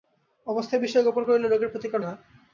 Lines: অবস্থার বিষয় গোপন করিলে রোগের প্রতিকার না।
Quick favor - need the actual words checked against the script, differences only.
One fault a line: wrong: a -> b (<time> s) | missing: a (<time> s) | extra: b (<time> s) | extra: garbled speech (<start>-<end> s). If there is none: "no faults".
no faults